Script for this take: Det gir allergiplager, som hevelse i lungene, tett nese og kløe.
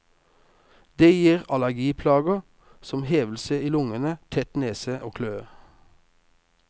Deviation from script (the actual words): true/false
false